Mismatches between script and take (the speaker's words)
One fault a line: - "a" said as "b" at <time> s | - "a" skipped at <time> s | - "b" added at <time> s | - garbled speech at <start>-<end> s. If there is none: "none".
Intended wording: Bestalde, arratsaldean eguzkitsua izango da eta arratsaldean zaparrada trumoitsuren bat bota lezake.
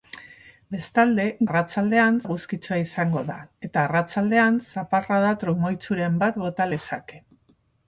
none